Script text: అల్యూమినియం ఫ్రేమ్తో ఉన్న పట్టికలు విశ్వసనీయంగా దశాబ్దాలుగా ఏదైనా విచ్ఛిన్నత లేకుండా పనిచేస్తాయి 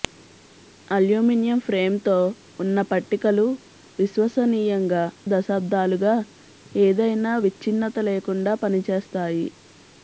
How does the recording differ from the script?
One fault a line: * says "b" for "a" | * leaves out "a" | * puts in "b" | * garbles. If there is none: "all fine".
all fine